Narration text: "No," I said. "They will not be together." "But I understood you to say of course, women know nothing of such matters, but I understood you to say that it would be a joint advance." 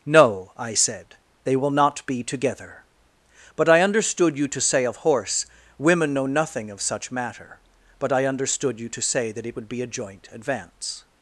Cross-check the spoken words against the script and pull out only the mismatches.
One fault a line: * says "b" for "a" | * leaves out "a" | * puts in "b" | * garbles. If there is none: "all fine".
* says "horse" for "course"
* says "matter" for "matters"